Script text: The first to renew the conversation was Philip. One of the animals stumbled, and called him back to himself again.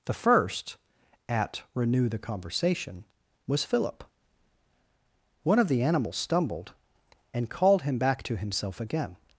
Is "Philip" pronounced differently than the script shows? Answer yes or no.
no